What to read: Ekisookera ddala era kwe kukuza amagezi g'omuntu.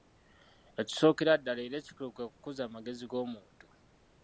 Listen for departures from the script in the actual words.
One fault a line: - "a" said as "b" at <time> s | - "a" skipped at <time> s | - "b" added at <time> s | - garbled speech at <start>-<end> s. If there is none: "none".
- "ekikulu" added at 1.8 s